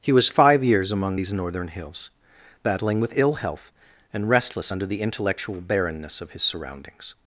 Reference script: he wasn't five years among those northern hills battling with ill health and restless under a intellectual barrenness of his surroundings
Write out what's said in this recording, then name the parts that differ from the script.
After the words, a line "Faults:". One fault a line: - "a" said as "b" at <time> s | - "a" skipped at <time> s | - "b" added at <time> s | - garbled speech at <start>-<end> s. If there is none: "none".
he was five years among these northern hills battling with ill health and restless under the intellectual barrenness of his surroundings
Faults:
- "wasn't" said as "was" at 0.1 s
- "those" said as "these" at 1.1 s
- "a" said as "the" at 4.9 s